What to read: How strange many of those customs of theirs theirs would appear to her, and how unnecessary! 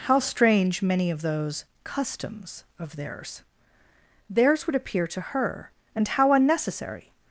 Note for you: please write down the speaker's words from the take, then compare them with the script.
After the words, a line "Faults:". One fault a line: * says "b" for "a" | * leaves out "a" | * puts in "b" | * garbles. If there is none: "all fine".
How strange many of those customs of theirs theirs would appear to her, and how unnecessary!
Faults:
all fine